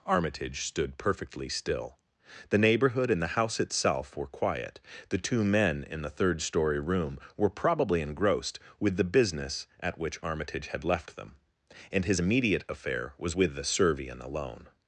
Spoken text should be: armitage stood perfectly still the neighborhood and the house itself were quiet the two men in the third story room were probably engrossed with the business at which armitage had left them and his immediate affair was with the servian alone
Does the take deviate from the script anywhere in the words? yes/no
no